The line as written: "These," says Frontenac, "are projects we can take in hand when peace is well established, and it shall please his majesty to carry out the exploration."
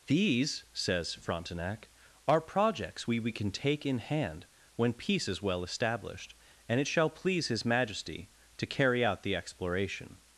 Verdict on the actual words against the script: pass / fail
fail